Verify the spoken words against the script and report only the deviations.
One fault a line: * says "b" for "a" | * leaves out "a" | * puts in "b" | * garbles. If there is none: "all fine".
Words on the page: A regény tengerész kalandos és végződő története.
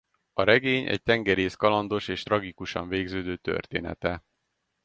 * puts in "egy"
* puts in "tragikusan"